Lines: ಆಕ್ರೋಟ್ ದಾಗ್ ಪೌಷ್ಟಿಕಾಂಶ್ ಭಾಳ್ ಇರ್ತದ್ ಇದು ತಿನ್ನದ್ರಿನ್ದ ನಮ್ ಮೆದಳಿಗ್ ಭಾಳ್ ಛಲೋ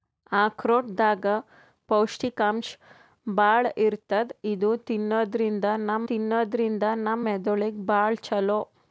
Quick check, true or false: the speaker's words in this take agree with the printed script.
false